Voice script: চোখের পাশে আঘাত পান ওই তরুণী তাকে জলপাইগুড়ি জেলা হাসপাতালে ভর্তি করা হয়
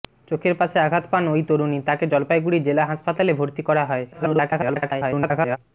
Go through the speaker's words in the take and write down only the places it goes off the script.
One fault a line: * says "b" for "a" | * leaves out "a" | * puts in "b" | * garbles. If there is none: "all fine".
* garbles